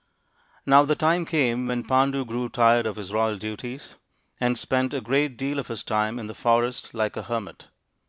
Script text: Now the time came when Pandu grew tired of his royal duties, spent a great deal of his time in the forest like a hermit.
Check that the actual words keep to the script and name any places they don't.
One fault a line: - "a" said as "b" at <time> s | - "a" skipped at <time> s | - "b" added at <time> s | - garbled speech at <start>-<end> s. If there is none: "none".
- "and" added at 4.4 s